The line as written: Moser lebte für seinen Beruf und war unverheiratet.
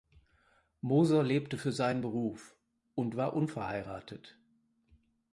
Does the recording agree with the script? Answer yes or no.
yes